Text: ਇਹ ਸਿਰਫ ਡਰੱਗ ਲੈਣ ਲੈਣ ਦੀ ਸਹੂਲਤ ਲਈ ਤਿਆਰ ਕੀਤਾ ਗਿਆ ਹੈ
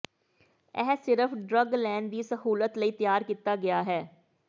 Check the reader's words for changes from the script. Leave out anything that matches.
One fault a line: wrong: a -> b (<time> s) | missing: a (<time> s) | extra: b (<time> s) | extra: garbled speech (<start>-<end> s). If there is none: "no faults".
missing: ਲੈਣ (2.1 s)